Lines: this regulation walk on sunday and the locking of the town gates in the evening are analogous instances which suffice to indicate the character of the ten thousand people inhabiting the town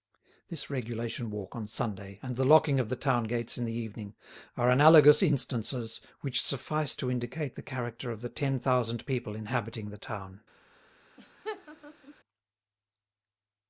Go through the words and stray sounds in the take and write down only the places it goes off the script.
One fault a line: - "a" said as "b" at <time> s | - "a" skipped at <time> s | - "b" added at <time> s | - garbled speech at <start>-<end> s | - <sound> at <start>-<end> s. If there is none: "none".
- laugh at 11.2-12.1 s